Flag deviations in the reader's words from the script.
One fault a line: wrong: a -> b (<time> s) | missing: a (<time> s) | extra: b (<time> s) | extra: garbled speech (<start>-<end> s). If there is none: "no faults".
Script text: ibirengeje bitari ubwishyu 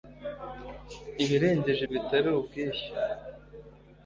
no faults